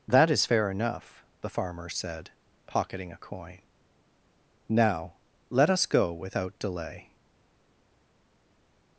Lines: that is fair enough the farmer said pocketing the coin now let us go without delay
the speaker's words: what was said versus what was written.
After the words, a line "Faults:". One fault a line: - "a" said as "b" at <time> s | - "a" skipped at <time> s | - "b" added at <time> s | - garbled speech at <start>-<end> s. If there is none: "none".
that is fair enough the farmer said pocketing a coin now let us go without delay
Faults:
- "the" said as "a" at 3.1 s